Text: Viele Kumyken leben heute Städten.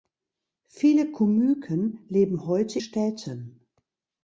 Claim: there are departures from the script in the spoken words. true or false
false